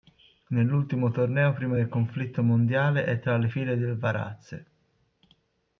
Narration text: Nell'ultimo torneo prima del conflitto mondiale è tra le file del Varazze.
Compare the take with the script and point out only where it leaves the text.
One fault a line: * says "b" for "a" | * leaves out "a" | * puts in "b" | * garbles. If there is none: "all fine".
all fine